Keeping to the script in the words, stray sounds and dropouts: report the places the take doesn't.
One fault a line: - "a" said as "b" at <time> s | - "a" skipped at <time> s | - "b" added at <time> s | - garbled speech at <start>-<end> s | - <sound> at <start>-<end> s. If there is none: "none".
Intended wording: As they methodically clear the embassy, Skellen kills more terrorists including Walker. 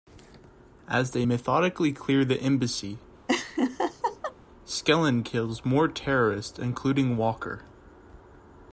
- laugh at 3.3-4.3 s